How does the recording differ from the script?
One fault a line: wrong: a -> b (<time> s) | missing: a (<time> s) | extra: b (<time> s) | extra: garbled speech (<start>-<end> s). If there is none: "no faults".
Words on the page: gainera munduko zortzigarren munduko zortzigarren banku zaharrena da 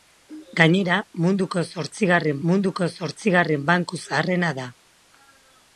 no faults